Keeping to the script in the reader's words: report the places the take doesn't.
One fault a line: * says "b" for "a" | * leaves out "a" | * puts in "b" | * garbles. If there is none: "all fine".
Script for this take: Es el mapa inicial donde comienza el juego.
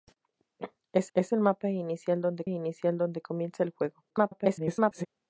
* puts in "es"
* puts in "inicial donde"
* garbles